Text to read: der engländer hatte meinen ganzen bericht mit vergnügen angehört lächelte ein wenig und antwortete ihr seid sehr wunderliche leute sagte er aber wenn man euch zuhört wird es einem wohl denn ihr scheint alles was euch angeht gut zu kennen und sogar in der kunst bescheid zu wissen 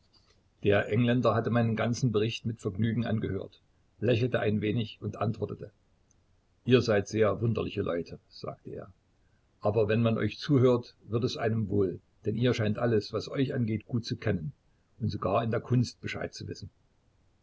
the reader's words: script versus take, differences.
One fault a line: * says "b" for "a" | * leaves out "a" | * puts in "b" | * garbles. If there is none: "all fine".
all fine